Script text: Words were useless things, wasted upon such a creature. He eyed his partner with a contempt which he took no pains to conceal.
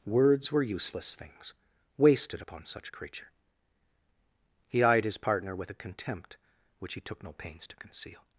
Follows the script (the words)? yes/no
yes